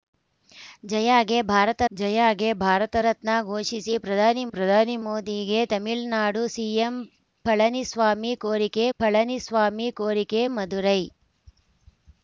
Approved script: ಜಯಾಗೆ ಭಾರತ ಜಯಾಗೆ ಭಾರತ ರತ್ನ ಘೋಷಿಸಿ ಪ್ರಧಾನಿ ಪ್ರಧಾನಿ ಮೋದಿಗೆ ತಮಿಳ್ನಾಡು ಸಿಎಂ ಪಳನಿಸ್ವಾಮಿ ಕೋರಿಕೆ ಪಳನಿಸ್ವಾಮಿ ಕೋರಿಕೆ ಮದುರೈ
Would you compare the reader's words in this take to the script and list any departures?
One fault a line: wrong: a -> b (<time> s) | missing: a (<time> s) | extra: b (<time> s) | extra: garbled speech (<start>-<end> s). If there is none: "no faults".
no faults